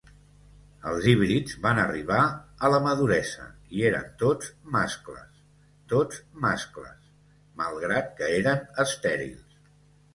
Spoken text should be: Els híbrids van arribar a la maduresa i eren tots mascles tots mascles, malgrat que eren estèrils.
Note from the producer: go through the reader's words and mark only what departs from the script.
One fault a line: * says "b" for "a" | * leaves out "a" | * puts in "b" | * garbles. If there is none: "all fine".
all fine